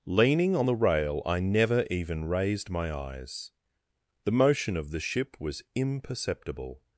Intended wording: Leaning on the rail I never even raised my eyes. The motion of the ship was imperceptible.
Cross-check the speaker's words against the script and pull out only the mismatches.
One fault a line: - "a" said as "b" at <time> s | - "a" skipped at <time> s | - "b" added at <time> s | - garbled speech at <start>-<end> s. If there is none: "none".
none